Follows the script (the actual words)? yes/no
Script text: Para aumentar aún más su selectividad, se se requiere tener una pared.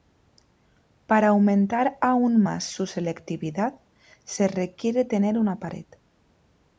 no